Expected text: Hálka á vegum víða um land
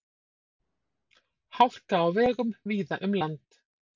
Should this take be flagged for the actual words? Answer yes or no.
no